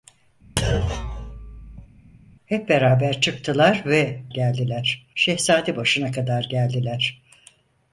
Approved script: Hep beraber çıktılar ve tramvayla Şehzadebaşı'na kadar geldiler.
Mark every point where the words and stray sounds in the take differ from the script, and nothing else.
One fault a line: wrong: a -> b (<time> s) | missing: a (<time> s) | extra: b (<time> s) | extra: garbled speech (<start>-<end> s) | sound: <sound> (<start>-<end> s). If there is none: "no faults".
sound: thud (0.6-1.9 s)
wrong: tramvayla -> geldiler (4.3 s)